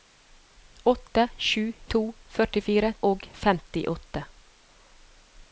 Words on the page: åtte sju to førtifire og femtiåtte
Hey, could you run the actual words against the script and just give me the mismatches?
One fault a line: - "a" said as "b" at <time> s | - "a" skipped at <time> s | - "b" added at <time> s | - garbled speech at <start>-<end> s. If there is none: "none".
none